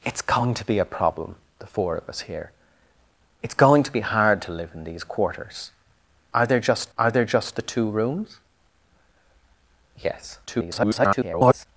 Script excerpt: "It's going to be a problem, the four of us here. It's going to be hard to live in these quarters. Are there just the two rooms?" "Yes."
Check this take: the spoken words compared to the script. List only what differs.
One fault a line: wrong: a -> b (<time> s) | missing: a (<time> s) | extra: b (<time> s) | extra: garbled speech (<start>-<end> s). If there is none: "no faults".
extra: are there just (7.0 s)
extra: garbled speech (10.5-11.7 s)